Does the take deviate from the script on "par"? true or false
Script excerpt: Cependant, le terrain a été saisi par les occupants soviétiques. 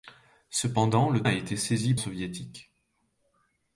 true